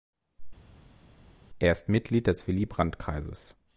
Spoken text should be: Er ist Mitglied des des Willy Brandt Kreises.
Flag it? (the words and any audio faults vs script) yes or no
yes